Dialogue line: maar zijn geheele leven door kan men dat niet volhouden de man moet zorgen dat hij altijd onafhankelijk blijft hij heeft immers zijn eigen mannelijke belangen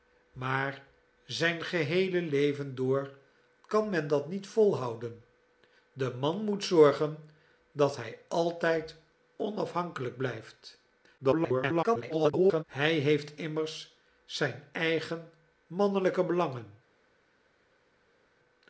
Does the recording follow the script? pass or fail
fail